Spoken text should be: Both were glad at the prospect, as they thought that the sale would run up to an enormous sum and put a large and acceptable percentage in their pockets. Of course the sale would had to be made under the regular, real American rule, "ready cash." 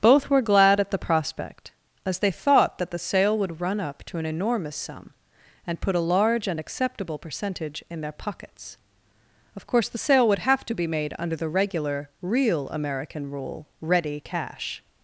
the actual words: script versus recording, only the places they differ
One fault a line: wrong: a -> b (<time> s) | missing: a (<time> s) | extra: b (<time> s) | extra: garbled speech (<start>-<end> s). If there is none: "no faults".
wrong: had -> have (10.4 s)